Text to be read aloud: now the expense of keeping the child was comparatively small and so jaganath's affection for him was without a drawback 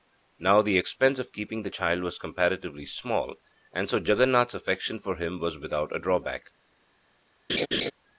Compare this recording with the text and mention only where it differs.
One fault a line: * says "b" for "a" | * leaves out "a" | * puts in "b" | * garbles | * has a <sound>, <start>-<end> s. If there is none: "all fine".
* has a laugh, 7.5-7.9 s